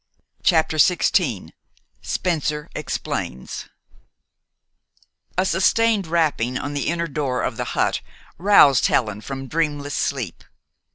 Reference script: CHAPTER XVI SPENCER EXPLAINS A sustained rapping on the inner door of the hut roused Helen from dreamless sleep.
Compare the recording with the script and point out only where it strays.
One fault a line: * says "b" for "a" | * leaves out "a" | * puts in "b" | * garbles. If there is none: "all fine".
all fine